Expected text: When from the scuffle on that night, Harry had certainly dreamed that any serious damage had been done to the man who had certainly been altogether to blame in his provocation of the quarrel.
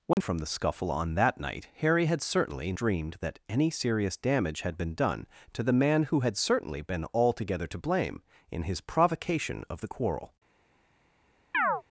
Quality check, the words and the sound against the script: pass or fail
fail